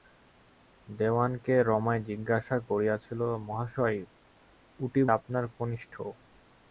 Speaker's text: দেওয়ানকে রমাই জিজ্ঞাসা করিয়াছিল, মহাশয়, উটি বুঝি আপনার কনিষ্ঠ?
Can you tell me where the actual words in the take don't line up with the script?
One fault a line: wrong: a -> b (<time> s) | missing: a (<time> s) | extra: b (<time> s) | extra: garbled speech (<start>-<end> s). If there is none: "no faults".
missing: বুঝি (5.0 s)